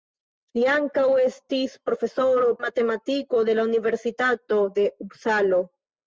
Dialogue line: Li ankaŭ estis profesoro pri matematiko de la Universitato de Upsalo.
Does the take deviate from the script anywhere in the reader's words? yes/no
yes